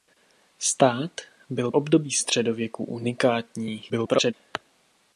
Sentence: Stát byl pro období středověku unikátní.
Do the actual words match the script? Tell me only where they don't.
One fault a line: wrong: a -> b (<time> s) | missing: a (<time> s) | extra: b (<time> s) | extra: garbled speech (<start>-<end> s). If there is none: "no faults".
missing: pro (1.7 s)
extra: garbled speech (3.9-4.3 s)